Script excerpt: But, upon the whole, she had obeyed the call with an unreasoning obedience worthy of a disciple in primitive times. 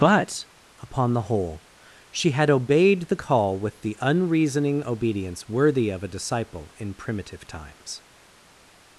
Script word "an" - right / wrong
wrong